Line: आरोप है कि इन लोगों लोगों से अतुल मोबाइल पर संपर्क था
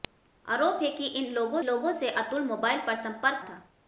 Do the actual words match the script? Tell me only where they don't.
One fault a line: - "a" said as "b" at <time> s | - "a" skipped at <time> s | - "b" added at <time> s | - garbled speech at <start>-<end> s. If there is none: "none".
none